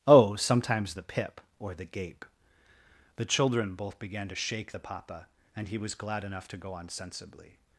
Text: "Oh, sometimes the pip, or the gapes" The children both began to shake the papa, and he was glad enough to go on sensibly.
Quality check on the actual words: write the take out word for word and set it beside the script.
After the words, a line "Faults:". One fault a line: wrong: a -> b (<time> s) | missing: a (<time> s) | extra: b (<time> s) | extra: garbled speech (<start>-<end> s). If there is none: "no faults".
"Oh, sometimes the pip, or the gape" The children both began to shake the papa, and he was glad enough to go on sensibly.
Faults:
wrong: gapes -> gape (1.9 s)